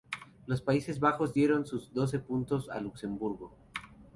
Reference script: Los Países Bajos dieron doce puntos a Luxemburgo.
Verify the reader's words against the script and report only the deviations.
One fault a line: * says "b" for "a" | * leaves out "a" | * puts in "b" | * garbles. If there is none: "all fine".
* puts in "sus"